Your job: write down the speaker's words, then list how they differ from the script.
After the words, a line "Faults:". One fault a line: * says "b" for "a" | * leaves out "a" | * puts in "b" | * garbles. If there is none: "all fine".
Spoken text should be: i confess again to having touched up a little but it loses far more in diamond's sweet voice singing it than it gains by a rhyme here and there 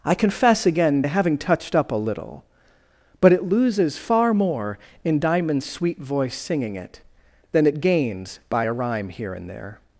i confess again to having touched up a little but it loses far more in diamond's sweet voice singing it than it gains by a rhyme here and there
Faults:
all fine